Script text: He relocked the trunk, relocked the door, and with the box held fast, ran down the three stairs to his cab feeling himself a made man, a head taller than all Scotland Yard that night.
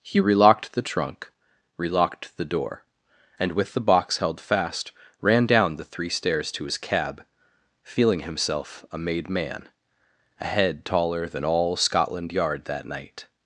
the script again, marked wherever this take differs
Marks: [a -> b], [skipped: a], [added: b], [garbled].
He relocked the trunk, relocked the door, and with the box held fast, ran down the three stairs to his cab feeling himself a made man, a head taller than all Scotland Yard that night.